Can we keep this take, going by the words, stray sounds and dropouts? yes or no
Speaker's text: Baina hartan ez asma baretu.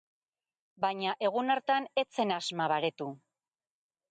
no